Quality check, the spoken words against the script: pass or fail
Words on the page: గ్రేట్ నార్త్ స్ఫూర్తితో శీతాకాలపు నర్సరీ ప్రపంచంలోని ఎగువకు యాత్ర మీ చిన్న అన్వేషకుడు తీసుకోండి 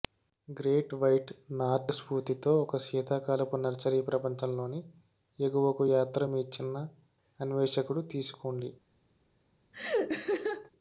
fail